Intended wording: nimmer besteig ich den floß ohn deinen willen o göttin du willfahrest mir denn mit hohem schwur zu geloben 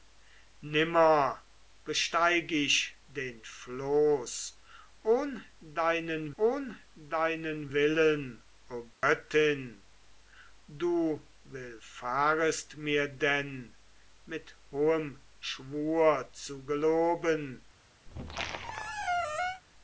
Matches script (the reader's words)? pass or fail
fail